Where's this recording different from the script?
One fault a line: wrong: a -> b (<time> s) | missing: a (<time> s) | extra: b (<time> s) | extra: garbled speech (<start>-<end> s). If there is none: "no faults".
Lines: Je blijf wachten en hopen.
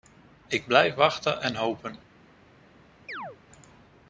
wrong: Je -> Ik (0.5 s)